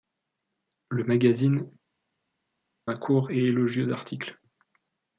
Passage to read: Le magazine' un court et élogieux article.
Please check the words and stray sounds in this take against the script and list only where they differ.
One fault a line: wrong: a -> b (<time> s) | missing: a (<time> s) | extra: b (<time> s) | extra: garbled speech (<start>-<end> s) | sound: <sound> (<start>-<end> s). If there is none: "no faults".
no faults